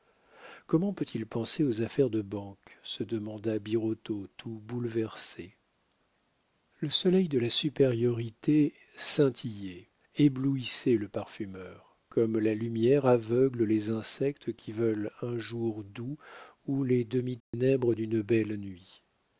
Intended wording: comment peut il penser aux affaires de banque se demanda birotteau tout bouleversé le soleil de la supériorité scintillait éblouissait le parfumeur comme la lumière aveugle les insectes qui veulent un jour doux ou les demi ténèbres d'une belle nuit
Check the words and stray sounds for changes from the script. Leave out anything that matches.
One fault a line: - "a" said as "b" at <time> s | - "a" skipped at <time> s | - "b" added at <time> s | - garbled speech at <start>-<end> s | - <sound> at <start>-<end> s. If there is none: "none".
- dropout at 17.4-17.5 s